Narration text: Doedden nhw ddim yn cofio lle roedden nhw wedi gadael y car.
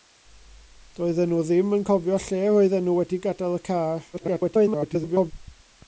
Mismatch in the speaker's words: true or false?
true